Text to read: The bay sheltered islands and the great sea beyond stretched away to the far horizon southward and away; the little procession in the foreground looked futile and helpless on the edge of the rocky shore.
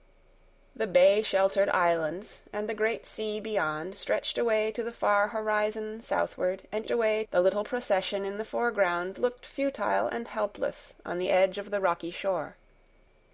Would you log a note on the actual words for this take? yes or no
no